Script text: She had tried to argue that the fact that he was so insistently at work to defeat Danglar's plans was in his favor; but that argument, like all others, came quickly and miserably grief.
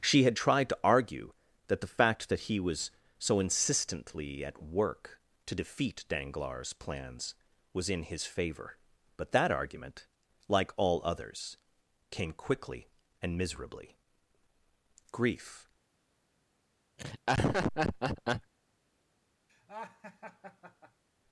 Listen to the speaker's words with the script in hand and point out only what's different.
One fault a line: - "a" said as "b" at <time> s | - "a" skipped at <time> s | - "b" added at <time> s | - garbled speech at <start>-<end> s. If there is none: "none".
none